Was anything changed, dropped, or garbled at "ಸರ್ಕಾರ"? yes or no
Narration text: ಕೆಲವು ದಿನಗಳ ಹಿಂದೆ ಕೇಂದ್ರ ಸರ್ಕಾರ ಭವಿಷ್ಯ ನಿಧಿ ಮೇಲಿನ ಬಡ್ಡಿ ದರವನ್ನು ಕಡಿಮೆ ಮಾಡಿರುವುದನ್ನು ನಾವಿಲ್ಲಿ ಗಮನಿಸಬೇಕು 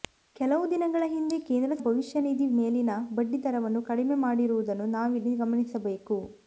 yes